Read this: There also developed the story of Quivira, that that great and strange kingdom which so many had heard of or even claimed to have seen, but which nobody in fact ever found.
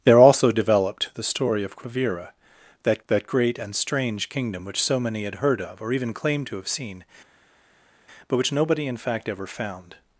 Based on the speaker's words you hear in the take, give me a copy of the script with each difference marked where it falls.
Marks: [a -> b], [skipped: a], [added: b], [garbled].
There also developed the story of Quivira, that that great and strange kingdom which so many had heard of or even claimed to have seen, but which nobody in fact ever found.